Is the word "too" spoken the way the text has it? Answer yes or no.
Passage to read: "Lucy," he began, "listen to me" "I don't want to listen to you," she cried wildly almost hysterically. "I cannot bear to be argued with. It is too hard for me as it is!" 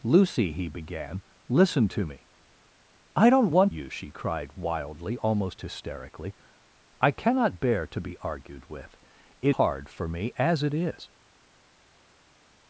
no